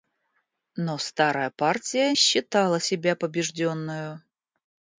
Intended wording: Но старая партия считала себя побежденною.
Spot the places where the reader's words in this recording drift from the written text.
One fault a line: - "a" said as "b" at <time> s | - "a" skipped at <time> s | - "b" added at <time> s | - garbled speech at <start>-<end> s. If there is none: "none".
none